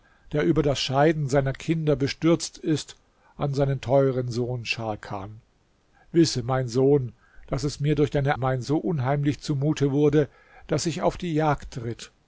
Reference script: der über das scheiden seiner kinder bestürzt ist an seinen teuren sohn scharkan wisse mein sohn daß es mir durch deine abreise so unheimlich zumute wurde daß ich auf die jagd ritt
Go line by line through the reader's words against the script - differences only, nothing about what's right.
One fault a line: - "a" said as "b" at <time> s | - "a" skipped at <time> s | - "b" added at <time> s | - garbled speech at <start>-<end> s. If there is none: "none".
- "abreise" said as "mein" at 8.3 s